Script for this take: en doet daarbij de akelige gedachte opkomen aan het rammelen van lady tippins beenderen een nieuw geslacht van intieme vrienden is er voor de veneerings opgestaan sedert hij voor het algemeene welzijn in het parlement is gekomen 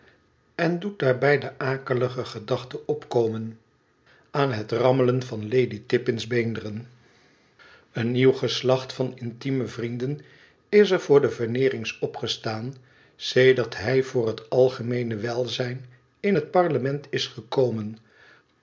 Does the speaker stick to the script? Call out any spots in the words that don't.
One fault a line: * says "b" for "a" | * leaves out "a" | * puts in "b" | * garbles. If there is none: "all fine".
all fine